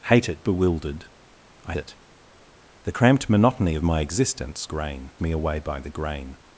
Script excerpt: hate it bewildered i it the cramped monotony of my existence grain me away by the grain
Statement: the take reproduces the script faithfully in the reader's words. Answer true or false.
true